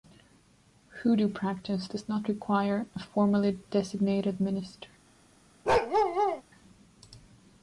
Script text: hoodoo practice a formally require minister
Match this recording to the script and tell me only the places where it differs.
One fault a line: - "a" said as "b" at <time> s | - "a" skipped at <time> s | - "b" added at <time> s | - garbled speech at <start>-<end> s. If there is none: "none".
- "does not require" added at 1.8 s
- "require" said as "designated" at 3.7 s